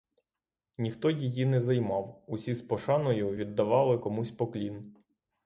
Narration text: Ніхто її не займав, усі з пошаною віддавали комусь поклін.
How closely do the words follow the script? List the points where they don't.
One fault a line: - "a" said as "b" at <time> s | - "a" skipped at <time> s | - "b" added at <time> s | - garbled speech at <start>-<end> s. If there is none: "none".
none